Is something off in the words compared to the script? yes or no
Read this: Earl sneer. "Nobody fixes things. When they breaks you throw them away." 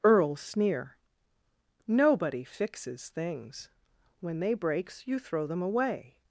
no